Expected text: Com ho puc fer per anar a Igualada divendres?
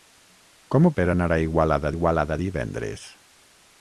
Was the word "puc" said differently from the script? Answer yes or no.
yes